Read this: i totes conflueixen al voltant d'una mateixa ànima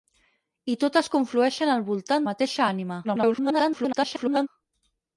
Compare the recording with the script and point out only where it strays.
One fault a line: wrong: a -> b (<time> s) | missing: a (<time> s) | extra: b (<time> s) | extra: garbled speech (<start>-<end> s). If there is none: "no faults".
missing: d'una (2.3 s)
extra: garbled speech (3.0-4.5 s)